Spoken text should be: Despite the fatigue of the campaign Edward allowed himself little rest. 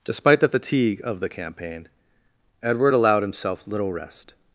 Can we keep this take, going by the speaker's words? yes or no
yes